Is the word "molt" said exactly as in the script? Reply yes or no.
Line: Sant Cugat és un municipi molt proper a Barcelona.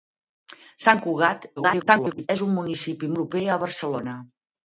no